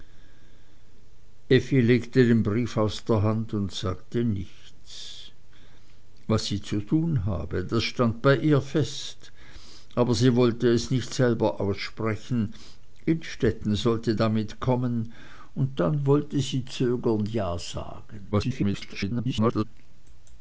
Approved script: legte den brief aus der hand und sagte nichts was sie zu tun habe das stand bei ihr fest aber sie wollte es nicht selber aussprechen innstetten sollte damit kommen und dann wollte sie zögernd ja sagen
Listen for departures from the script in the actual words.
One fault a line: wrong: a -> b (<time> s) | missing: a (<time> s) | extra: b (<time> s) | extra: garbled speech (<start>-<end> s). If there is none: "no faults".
extra: garbled speech (18.3-19.6 s)